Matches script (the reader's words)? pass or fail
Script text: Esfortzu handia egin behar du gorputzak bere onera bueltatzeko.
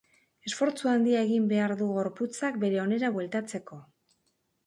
pass